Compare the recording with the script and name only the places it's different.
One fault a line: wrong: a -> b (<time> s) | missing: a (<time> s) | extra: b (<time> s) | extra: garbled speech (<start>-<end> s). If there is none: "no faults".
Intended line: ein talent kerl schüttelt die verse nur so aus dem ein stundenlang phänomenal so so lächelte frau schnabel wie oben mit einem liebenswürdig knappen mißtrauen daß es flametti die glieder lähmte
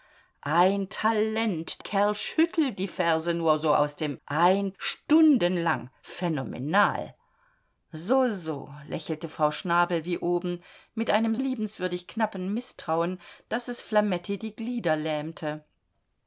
no faults